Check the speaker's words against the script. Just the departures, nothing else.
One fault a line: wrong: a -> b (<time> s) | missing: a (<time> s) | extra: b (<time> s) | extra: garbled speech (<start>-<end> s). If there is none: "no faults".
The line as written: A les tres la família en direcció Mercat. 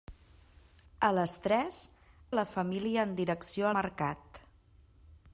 no faults